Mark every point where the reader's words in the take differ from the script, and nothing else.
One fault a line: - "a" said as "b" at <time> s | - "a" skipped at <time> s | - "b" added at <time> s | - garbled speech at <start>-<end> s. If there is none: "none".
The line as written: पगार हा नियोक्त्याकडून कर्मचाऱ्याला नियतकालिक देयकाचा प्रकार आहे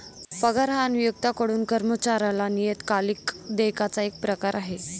- "एक" added at 4.0 s